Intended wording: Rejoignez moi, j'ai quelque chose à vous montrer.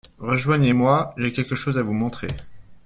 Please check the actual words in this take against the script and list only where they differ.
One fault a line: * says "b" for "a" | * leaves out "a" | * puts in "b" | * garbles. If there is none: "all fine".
all fine